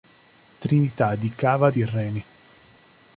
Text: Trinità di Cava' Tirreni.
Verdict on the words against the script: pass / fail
pass